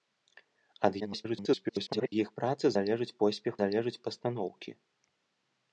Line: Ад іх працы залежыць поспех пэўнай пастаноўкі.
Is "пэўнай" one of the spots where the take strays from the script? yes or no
yes